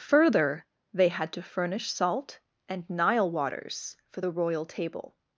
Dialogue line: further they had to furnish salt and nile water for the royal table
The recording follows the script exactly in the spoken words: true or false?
false